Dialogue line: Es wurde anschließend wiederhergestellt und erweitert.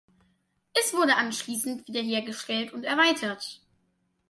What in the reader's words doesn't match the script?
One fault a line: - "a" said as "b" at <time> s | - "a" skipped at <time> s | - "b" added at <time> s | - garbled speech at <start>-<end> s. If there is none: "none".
none